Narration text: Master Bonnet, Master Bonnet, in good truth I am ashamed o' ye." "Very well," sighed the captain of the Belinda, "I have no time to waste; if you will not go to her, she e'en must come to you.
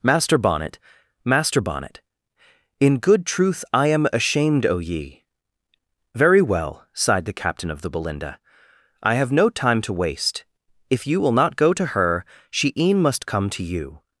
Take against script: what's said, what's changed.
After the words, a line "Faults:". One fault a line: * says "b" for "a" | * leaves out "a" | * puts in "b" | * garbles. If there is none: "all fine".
Master Bonnet, Master Bonnet, in good truth I am ashamed o' ye." "Very well," sighed the captain of the Belinda, "I have no time to waste; if you will not go to her, she e'en must come to you.
Faults:
all fine